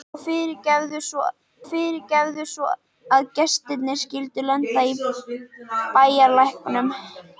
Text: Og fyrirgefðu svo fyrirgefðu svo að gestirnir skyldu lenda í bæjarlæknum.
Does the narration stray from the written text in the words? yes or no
no